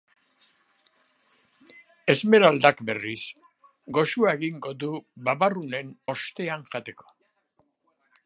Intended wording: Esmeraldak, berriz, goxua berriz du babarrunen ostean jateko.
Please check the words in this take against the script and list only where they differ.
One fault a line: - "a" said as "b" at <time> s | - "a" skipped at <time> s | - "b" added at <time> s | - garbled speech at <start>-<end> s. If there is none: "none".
- "berriz" said as "egingo" at 4.4 s